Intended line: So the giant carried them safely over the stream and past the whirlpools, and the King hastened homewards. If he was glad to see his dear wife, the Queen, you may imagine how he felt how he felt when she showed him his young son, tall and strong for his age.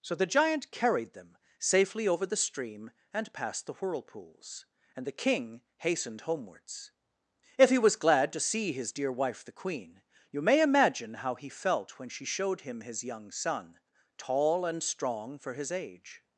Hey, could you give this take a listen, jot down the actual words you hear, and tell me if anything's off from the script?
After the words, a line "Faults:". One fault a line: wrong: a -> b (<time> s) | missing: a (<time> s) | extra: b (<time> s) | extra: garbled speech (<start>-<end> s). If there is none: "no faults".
So the giant carried them safely over the stream and past the whirlpools, and the King hastened homewards. If he was glad to see his dear wife, the Queen, you may imagine how he felt when she showed him his young son, tall and strong for his age.
Faults:
missing: how he felt (12.0 s)